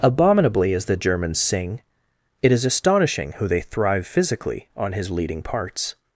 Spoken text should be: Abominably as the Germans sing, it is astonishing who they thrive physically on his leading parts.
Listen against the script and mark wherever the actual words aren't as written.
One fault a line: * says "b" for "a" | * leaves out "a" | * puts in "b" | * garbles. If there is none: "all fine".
all fine